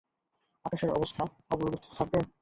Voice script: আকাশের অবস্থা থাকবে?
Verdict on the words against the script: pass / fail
fail